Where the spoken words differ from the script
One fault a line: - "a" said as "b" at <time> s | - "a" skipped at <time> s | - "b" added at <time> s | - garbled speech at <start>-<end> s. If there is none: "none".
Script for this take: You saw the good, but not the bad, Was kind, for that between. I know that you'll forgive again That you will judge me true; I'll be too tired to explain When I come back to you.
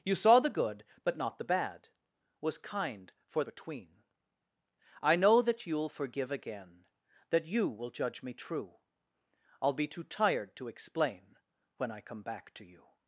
- "that" skipped at 3.4 s